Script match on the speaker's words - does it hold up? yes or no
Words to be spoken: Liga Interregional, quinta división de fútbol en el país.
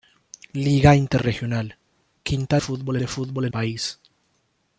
no